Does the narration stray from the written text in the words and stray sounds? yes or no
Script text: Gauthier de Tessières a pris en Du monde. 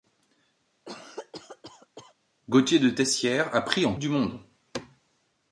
yes